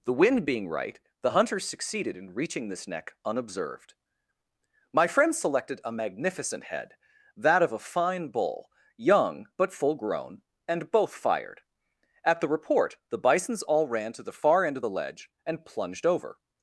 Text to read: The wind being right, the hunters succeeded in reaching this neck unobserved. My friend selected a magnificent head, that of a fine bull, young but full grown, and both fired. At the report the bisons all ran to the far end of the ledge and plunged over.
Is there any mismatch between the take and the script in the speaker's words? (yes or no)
no